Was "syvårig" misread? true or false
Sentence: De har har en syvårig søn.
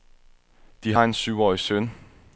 false